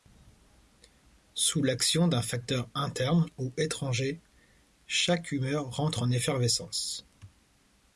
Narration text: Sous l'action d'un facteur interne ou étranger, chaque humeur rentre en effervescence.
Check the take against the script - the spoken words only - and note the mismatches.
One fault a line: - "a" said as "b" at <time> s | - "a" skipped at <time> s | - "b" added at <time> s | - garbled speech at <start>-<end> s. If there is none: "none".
none